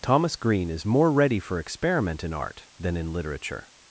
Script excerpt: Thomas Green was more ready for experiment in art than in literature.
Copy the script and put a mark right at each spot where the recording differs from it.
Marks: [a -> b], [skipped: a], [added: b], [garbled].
Thomas Green [was -> is] more ready for experiment in art than in literature.